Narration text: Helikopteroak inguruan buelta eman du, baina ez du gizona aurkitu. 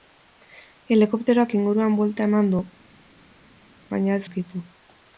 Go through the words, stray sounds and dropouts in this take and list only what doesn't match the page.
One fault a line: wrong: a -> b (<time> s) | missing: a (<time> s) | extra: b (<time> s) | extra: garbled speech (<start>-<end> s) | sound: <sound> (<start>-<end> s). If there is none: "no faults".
missing: du gizona (4.2 s)